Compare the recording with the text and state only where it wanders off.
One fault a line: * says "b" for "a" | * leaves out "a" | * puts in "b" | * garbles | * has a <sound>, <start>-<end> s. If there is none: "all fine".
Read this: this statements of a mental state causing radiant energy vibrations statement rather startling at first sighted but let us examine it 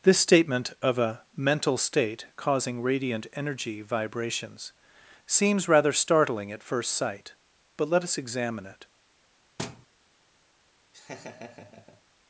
* says "statement" for "statements"
* says "seems" for "statement"
* says "sight" for "sighted"
* has a thud, 9.6-9.9 s
* has a laugh, 10.9-12.0 s